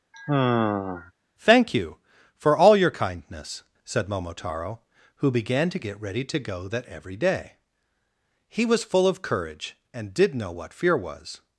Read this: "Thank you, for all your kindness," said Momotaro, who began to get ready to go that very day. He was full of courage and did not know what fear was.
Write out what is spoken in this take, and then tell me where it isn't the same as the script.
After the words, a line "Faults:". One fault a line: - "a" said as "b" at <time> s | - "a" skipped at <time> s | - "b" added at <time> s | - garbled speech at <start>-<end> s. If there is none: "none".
"Thank you, for all your kindness," said Momotaro, who began to get ready to go that every day. He was full of courage and did know what fear was.
Faults:
- "very" said as "every" at 6.9 s
- "not" skipped at 10.3 s